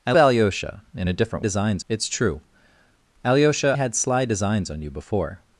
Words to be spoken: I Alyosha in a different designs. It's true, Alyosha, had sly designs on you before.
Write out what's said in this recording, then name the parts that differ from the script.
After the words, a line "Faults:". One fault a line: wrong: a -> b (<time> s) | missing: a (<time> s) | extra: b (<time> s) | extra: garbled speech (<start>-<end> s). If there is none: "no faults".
I Alyosha in a different designs. It's true, Alyosha, had sly designs on you before.
Faults:
no faults